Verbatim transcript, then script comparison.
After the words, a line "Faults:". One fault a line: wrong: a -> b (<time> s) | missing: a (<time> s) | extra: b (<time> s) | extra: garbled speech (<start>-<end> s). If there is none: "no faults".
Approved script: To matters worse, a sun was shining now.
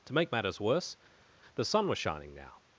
To make matters worse, the sun was shining now.
Faults:
extra: make (0.1 s)
wrong: a -> the (1.5 s)